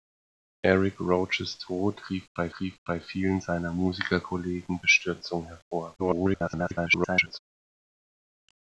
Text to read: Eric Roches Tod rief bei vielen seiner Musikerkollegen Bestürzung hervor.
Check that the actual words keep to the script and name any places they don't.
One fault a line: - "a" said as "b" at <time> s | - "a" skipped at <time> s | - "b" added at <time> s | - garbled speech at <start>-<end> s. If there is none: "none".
- "rief bei" added at 2.6 s
- garbled speech at 6.0-7.4 s